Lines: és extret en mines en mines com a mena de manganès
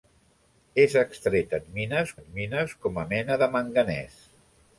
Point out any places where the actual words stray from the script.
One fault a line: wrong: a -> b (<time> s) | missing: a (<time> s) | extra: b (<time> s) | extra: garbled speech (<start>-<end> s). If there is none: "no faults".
no faults